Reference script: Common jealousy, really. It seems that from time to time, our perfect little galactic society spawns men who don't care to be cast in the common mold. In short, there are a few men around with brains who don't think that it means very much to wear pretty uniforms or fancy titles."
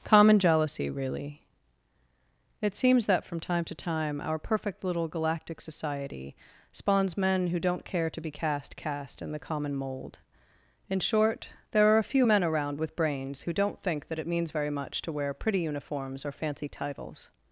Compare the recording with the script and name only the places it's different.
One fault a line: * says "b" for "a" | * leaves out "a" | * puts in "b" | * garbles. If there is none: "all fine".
* puts in "cast"